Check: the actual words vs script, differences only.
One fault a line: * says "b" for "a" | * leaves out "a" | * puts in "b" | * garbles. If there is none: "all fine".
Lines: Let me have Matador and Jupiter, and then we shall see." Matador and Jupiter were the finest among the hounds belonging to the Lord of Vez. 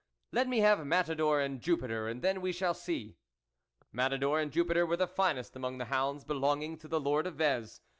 all fine